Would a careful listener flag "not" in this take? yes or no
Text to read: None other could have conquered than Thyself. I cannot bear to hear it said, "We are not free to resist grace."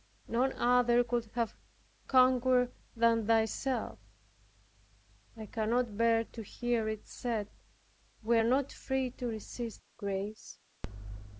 no